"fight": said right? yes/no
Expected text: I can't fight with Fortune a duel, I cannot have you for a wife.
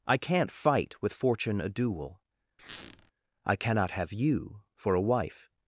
yes